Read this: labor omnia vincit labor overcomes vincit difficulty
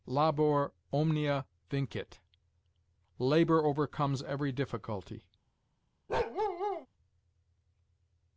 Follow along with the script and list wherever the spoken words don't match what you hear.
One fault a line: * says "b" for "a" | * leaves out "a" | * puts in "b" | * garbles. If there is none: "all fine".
* says "every" for "vincit"